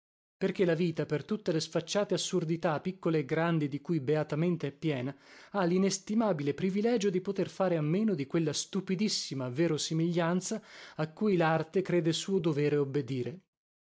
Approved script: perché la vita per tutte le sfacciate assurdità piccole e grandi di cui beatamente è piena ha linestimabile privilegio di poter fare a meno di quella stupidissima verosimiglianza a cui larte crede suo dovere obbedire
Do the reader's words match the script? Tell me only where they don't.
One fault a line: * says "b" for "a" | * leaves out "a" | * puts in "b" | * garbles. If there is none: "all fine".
all fine